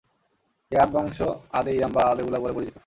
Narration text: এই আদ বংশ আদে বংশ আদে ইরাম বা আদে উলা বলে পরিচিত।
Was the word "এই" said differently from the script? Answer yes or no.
no